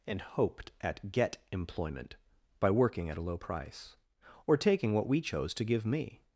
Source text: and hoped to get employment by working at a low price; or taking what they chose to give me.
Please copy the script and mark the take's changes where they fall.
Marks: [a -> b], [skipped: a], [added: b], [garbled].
and hoped [to -> at] get employment by working at a low price; or taking what [they -> we] chose to give me.